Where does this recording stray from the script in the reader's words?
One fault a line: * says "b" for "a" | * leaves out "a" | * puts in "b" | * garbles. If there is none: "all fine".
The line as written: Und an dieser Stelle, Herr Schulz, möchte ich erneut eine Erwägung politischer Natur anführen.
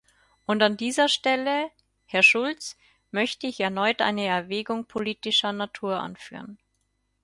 all fine